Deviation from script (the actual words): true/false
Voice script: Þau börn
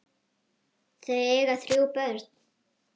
true